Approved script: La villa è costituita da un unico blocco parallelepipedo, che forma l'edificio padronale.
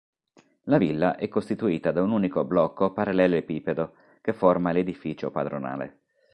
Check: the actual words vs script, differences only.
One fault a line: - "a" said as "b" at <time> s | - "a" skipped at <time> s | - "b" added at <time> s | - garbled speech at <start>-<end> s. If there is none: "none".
none